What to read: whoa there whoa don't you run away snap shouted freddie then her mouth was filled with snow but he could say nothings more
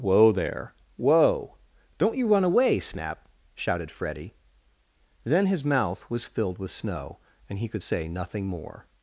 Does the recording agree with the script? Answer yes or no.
no